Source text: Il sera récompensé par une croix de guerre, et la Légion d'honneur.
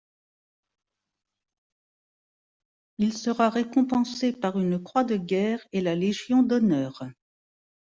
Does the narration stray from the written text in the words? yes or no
no